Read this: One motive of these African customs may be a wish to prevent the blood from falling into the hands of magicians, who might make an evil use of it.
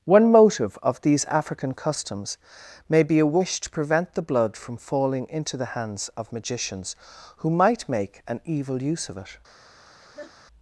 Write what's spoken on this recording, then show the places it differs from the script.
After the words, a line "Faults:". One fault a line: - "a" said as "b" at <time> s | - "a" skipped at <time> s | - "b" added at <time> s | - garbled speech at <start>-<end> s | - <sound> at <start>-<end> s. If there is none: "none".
One motive of these African customs may be a wish to prevent the blood from falling into the hands of magicians, who might make an evil use of it.
Faults:
- laugh at 10.0-10.3 s